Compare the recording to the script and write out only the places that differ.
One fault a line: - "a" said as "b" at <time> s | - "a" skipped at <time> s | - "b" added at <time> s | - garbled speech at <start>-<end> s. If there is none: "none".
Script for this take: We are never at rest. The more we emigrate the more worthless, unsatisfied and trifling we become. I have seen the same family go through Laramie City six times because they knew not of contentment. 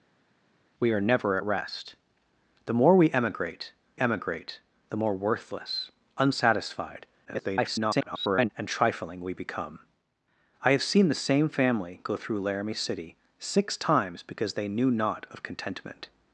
- "emigrate" added at 4.0 s
- garbled speech at 7.2-8.5 s